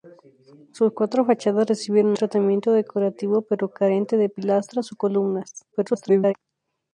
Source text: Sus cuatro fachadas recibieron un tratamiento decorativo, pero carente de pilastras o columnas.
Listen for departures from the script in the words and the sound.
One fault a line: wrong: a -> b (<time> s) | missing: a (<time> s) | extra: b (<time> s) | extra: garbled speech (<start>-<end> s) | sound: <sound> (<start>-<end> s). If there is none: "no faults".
missing: un (2.2 s)
extra: garbled speech (5.7-6.3 s)